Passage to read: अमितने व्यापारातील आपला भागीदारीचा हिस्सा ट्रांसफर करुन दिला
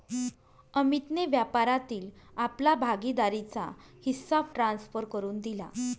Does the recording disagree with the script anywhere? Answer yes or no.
no